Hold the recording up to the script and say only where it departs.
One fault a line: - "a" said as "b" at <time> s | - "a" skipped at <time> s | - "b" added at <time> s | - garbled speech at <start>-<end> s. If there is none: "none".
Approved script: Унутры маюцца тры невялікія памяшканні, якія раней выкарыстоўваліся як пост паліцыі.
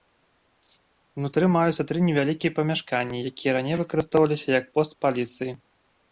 none